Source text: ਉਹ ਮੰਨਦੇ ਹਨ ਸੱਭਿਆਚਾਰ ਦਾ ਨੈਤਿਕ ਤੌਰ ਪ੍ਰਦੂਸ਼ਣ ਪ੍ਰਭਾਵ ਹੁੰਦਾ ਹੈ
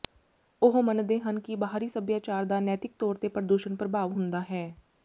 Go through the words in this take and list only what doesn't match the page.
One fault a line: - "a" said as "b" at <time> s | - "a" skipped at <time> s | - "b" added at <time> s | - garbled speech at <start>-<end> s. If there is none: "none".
- "ਕਿ ਬਾਹਰੀ" added at 1.4 s
- "ਤੇ" added at 3.2 s